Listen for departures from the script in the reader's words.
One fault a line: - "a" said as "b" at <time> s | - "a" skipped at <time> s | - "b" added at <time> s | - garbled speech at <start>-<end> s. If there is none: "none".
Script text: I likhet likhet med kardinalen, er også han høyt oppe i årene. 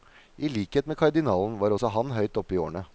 - "likhet" skipped at 0.9 s
- "er" said as "var" at 1.6 s